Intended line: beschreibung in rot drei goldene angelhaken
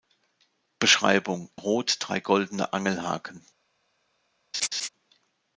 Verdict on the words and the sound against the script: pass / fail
fail